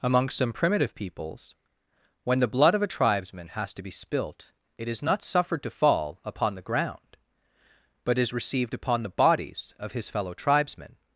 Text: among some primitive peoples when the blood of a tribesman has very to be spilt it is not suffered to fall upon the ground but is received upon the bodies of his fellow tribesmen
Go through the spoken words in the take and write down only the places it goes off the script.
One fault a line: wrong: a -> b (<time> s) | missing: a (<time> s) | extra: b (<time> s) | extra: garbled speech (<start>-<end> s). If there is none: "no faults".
missing: very (3.7 s)